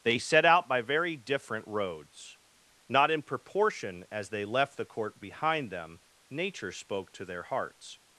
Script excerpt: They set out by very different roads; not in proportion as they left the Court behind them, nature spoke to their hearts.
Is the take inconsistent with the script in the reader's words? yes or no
no